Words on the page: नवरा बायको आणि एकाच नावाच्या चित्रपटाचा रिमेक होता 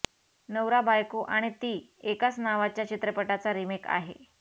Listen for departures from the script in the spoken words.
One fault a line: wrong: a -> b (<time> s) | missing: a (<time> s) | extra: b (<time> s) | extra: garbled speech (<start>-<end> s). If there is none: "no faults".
extra: ती (1.6 s)
wrong: होता -> आहे (3.9 s)